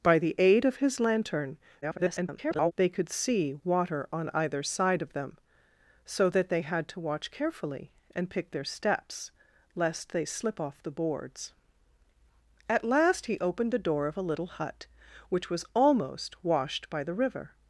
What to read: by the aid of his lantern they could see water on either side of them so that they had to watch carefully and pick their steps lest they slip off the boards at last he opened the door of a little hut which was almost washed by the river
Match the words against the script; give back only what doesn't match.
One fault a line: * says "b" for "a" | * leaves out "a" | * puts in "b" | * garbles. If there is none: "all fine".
* garbles